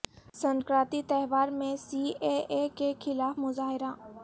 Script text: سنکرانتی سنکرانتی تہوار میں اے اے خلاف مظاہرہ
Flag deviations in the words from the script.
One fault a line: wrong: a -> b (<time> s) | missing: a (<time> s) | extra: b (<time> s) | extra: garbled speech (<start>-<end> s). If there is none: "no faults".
missing: سنکرانتی (1.0 s)
extra: سی (1.8 s)
extra: کے (2.7 s)